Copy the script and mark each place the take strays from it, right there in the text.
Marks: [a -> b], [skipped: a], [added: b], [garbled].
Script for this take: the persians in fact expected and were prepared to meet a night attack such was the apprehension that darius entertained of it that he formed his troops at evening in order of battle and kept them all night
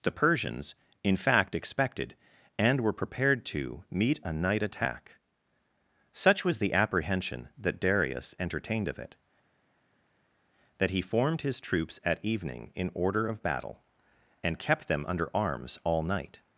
the persians in fact expected and were prepared to meet a night attack such was the apprehension that darius entertained of it that he formed his troops at evening in order of battle and kept them [added: under arms] all night